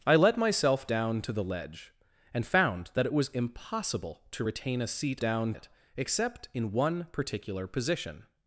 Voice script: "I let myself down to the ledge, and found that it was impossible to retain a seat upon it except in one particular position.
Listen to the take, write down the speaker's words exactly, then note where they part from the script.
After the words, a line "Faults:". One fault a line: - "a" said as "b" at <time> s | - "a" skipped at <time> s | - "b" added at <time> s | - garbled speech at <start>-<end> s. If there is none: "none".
"I let myself down to the ledge, and found that it was impossible to retain a seat down it except in one particular position.
Faults:
- "upon" said as "down" at 5.2 s